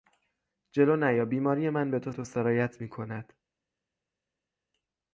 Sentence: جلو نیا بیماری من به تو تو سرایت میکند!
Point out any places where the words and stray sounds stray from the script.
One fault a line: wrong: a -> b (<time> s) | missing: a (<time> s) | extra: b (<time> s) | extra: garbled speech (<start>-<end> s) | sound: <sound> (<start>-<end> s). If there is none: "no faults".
no faults